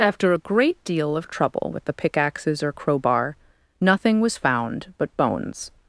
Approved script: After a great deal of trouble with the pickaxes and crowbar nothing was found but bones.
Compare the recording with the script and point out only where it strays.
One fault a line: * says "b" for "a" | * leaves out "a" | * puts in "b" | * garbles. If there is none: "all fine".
* says "or" for "and"